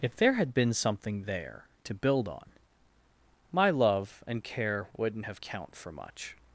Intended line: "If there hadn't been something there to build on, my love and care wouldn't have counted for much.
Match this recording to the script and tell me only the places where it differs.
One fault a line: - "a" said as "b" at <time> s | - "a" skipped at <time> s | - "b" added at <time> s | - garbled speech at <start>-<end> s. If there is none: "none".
- "hadn't" said as "had" at 0.3 s
- "counted" said as "count" at 5.4 s